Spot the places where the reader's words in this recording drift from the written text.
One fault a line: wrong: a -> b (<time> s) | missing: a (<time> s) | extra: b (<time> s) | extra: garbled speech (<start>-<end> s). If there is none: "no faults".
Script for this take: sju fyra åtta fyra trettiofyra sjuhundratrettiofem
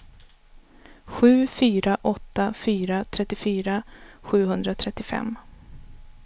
no faults